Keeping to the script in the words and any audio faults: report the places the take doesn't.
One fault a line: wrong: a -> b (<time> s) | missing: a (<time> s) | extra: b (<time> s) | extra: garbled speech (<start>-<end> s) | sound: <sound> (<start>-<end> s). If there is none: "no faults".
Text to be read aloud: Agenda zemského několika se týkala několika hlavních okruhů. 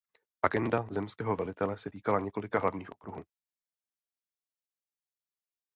wrong: několika -> velitele (1.4 s)